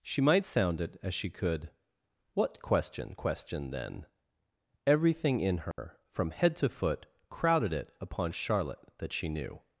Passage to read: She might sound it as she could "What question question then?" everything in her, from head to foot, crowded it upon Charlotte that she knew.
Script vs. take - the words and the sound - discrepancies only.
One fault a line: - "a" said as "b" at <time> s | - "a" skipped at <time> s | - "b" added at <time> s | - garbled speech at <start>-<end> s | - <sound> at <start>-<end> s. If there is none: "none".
- dropout at 5.7-5.8 s